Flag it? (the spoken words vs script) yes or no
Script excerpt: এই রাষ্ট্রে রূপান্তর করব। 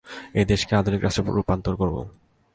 yes